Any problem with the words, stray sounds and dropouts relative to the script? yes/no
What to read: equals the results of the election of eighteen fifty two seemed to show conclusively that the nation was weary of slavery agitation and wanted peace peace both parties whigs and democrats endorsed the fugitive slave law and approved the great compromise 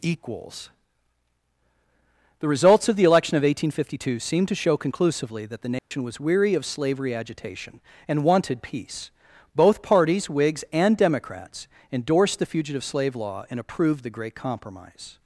yes